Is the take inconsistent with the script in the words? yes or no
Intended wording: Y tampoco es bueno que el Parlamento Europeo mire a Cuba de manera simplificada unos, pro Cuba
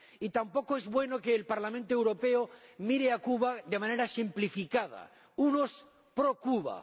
no